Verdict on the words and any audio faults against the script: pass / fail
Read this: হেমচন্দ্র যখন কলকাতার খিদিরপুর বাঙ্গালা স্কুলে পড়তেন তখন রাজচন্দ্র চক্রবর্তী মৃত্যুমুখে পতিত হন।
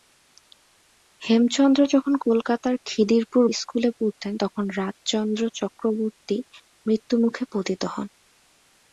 fail